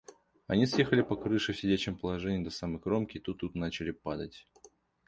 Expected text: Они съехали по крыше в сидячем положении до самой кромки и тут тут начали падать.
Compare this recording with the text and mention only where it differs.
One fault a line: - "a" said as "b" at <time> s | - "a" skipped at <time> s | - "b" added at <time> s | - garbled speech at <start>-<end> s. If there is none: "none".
none